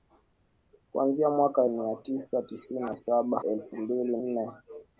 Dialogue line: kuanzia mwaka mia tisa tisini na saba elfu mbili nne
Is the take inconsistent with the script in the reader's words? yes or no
no